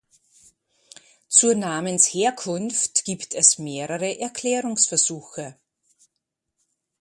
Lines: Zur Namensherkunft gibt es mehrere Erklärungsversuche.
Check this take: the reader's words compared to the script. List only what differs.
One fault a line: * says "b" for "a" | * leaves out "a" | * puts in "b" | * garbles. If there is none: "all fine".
all fine